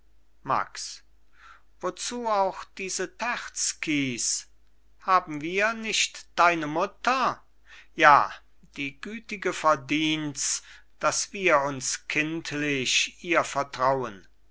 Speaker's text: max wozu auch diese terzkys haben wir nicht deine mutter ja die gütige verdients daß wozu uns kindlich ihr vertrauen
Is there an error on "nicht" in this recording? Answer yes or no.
no